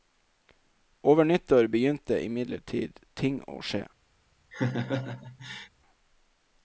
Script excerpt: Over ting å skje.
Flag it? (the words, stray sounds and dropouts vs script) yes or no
yes